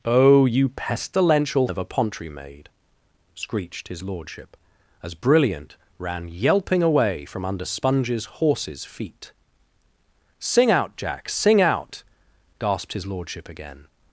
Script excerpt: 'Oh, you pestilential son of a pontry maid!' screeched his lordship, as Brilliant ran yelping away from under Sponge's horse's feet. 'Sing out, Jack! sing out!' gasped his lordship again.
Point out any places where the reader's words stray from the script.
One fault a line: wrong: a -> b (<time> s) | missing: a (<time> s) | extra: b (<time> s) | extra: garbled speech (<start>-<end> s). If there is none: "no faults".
missing: son (1.7 s)